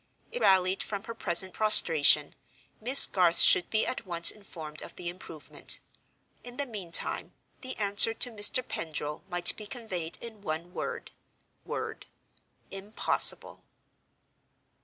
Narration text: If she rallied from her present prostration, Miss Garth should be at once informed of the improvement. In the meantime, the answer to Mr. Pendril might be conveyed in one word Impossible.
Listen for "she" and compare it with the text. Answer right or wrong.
wrong